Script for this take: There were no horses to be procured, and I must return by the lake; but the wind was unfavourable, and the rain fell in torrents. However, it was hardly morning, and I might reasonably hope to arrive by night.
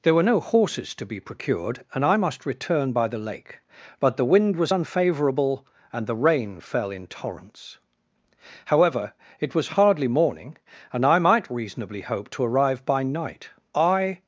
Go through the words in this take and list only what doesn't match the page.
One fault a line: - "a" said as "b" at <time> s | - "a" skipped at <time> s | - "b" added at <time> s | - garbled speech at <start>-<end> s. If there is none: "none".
- "I" added at 13.7 s